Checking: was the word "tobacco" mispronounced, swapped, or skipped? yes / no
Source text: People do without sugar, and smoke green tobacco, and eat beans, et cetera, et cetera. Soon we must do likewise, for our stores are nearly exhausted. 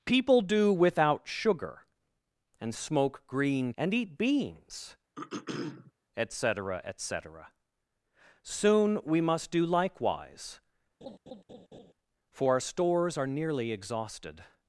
yes